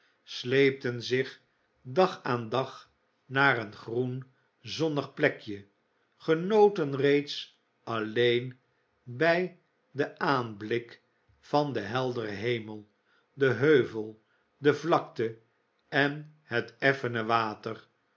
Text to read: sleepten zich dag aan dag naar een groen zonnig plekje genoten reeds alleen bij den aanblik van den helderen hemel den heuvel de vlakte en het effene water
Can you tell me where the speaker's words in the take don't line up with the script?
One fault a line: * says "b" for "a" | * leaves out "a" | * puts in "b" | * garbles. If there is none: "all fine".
all fine